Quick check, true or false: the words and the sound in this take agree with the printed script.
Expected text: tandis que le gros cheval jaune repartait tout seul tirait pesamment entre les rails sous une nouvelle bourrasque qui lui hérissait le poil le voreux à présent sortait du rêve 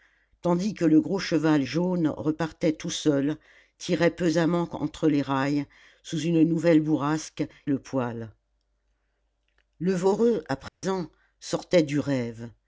false